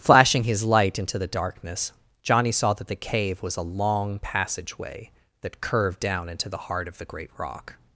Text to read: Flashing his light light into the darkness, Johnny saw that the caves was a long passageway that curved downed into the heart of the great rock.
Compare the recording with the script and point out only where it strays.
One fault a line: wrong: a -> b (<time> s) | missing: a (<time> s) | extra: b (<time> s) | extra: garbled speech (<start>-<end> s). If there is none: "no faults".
missing: light (1.0 s)
wrong: caves -> cave (3.0 s)
wrong: downed -> down (6.0 s)